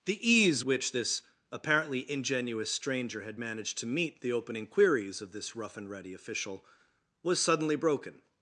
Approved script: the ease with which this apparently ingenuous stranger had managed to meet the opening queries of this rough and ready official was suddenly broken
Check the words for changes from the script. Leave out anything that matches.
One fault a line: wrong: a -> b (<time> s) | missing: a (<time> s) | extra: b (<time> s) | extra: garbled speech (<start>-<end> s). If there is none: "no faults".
missing: with (0.6 s)